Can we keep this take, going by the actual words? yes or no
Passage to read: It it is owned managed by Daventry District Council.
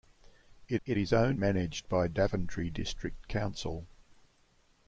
yes